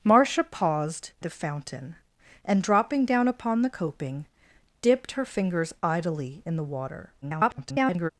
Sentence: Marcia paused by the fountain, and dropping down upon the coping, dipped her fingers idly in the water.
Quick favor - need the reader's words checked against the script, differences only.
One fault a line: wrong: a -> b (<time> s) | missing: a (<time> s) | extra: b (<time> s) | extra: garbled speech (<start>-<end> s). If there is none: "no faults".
missing: by (1.1 s)
extra: garbled speech (7.2-8.1 s)